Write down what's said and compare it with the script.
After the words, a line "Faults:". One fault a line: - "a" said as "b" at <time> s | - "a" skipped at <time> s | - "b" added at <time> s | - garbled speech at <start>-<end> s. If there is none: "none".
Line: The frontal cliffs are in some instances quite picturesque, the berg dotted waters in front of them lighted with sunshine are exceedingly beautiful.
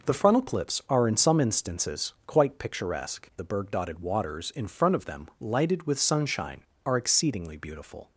The frontal cliffs are in some instances quite picturesque, the berg dotted waters in front of them lighted with sunshine are exceedingly beautiful.
Faults:
none